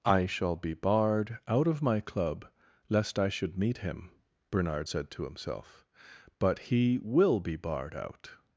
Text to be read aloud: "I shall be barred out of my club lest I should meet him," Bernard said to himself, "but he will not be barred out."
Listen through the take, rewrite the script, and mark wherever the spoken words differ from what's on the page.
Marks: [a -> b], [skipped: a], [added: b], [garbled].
"I shall be barred out of my club lest I should meet him," Bernard said to himself, "but he will [skipped: not] be barred out."